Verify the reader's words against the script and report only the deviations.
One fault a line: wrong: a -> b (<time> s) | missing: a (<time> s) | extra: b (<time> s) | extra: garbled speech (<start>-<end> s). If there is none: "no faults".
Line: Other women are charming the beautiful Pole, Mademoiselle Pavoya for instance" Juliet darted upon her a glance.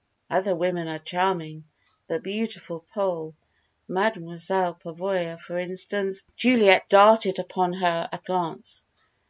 no faults